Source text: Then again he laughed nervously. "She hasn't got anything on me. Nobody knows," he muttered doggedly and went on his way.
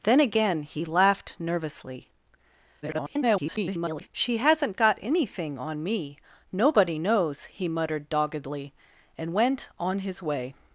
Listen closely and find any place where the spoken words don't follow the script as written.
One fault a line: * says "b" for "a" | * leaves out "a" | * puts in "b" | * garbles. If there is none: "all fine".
* garbles